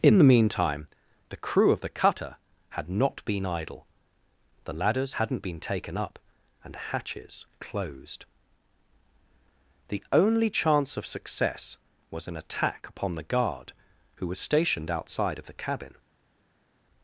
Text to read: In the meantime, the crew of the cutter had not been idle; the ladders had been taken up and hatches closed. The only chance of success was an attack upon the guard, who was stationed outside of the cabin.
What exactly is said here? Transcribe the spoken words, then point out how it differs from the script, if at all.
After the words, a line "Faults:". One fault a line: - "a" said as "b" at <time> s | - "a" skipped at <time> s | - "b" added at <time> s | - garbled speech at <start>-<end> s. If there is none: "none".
In the meantime, the crew of the cutter had not been idle; the ladders hadn't been taken up and hatches closed. The only chance of success was an attack upon the guard, who was stationed outside of the cabin.
Faults:
- "had" said as "hadn't" at 5.1 s